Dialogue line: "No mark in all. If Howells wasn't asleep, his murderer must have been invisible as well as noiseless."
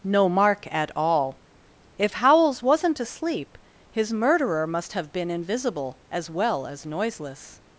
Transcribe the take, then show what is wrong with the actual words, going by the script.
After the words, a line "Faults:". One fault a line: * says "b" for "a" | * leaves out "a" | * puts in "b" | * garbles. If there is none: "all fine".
"No mark at all. If Howells wasn't asleep, his murderer must have been invisible as well as noiseless."
Faults:
* says "at" for "in"